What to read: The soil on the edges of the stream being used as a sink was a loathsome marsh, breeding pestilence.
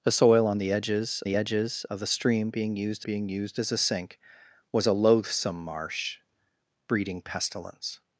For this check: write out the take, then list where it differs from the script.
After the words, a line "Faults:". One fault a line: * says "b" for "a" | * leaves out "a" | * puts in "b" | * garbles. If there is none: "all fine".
The soil on the edges the edges of the stream being used being used as a sink was a loathsome marsh, breeding pestilence.
Faults:
* puts in "the edges"
* puts in "being used"